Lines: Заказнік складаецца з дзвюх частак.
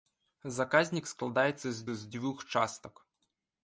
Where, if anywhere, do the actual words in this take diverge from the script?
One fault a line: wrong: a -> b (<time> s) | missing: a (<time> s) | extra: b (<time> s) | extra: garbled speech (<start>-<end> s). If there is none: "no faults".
extra: з (1.9 s)